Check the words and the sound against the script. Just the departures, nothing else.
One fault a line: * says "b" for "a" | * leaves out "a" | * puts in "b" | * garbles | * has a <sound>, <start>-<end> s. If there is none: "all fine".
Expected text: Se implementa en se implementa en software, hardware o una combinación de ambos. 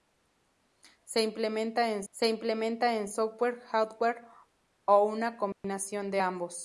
* has a dropout, 5.5-5.6 s